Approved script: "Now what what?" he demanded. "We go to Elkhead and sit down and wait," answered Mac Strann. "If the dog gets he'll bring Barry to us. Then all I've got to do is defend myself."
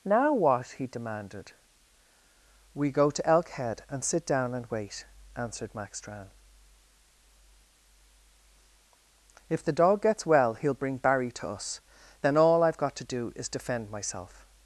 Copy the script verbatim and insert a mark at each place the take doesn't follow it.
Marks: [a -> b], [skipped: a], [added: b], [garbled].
"Now what [skipped: what?"] he demanded. "We go to Elkhead and sit down and wait," answered Mac Strann. "If the dog gets [added: well] he'll bring Barry to us. Then all I've got to do is defend myself."